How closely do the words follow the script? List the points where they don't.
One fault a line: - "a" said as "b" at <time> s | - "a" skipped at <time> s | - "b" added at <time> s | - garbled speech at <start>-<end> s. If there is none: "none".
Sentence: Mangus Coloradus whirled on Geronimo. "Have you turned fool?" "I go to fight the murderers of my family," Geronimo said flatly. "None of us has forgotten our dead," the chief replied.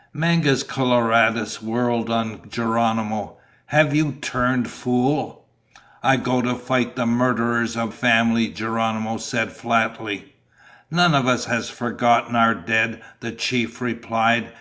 - "my" skipped at 7.9 s